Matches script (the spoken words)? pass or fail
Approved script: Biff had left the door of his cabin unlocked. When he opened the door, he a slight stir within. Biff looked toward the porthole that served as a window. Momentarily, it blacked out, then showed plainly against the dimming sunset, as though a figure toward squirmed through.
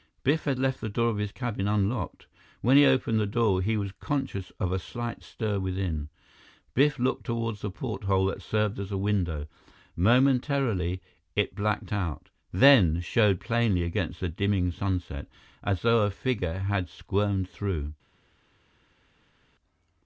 fail